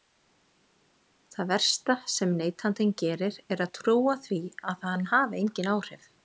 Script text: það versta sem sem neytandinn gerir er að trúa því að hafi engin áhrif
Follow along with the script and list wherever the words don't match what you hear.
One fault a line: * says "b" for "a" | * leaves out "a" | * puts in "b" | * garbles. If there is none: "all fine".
* leaves out "sem"
* puts in "hann"